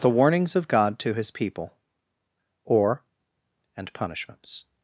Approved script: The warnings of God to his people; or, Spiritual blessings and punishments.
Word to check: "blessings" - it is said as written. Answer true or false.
false